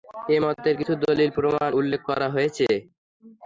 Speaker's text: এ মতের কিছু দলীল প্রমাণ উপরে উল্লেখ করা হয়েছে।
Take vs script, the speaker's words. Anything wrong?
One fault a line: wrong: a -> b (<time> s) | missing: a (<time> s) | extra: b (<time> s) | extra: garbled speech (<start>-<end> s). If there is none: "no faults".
missing: উপরে (1.7 s)